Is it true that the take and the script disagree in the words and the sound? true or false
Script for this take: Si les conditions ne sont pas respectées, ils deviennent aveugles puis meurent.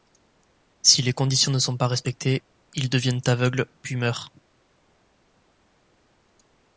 false